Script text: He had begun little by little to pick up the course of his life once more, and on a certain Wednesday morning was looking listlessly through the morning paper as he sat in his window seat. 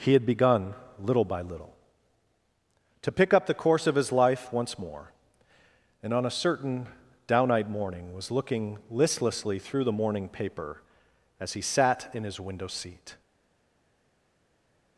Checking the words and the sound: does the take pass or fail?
fail